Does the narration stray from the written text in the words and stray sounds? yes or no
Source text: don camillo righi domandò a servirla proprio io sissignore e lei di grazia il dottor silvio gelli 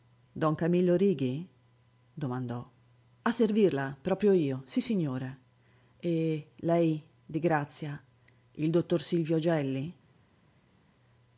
no